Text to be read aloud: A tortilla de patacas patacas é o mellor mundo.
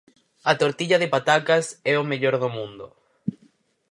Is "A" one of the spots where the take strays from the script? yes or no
no